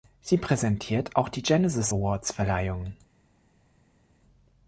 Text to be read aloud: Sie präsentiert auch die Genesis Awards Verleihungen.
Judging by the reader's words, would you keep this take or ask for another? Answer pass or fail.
pass